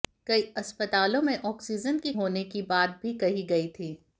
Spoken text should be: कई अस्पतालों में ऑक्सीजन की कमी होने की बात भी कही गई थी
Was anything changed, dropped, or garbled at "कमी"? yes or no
yes